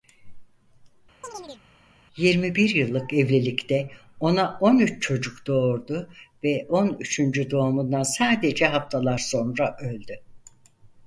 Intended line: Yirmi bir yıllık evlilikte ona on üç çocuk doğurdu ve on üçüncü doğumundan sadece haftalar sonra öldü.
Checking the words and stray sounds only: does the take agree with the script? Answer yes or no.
no